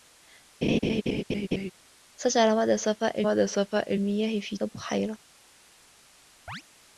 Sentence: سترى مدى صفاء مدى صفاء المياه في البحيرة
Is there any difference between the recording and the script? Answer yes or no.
no